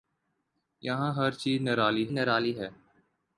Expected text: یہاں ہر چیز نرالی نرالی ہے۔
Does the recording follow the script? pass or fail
pass